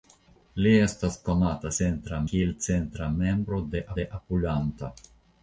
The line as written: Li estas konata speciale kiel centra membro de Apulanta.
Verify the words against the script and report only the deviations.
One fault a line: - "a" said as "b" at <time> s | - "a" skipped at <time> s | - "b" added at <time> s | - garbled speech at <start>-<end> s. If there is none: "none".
- "speciale" said as "centra" at 1.8 s
- "de" added at 4.0 s